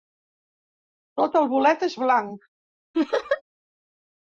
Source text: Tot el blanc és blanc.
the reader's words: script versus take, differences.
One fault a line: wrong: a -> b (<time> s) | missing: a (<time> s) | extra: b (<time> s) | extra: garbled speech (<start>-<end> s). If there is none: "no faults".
wrong: blanc -> bolet (1.5 s)